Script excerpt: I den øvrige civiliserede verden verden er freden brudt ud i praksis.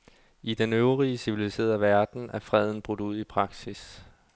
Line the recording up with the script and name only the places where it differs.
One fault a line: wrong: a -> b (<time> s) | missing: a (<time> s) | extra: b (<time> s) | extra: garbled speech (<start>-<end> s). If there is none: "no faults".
missing: verden (2.3 s)